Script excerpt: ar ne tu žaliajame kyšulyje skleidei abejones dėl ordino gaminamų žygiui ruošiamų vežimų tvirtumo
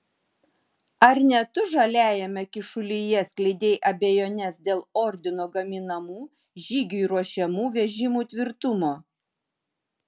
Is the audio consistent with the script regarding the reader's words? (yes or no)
yes